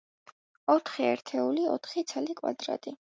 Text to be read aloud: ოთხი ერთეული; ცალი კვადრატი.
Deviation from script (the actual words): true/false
true